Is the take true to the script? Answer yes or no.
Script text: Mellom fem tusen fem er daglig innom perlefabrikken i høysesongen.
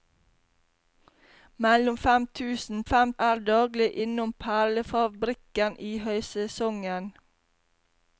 yes